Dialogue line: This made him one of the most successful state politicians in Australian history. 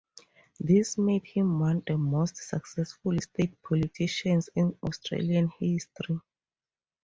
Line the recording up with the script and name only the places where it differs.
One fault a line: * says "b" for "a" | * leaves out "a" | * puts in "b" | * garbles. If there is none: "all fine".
* leaves out "of"